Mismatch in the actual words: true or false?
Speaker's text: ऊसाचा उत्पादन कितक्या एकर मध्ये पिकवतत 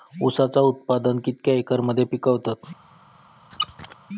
false